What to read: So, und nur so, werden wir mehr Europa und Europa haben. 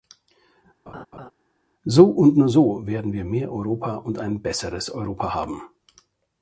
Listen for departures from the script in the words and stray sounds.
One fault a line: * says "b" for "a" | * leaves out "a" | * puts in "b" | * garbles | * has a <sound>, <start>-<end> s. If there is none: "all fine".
* has a laugh, 0.9-1.3 s
* puts in "ein besseres"